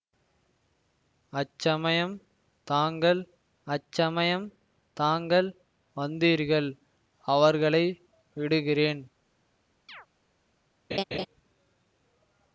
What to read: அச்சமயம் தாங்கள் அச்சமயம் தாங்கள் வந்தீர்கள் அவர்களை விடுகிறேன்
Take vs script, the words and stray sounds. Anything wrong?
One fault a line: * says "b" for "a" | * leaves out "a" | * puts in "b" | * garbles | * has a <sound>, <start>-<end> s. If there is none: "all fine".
* has a chirp, 9.9-10.1 s
* has a laugh, 10.9-11.3 s